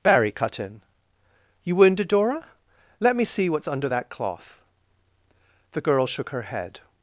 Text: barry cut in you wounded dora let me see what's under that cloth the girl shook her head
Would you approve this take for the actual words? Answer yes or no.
yes